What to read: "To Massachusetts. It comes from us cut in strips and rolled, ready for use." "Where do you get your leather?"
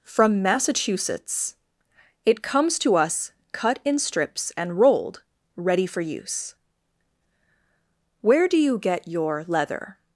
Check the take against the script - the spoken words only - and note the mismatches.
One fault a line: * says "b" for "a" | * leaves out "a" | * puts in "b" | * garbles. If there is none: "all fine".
* says "From" for "To"
* says "to" for "from"